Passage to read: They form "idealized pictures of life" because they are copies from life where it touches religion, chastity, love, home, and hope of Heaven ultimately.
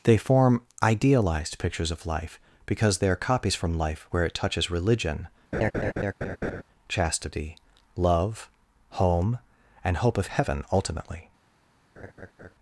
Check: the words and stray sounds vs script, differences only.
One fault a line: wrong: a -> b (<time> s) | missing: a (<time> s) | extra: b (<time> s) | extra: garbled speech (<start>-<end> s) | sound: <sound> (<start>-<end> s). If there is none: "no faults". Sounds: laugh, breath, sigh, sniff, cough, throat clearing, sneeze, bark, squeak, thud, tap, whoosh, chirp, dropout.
sound: laugh (5.5-6.6 s)
sound: laugh (12.0-12.5 s)